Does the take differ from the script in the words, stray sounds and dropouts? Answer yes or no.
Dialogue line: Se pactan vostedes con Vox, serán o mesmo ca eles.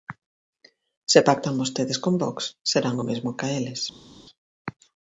no